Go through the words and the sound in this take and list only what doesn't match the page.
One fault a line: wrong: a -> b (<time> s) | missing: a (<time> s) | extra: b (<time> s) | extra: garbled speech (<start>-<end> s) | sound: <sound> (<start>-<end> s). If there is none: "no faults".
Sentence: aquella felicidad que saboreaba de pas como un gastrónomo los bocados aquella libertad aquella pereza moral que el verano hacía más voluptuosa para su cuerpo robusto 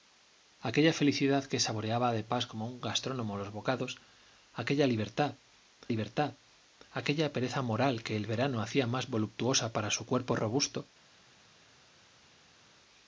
extra: libertad (5.9 s)